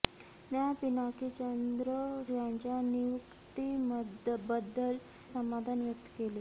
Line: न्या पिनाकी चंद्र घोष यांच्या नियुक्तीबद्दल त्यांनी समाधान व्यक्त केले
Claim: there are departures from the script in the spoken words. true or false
true